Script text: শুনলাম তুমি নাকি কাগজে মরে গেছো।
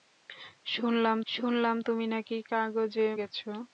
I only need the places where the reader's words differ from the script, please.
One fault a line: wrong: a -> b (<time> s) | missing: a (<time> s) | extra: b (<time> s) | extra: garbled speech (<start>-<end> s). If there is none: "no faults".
extra: শুনলাম (1.3 s)
missing: মরে (3.1 s)